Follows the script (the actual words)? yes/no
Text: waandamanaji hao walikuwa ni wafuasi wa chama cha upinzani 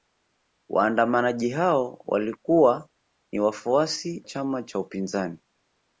no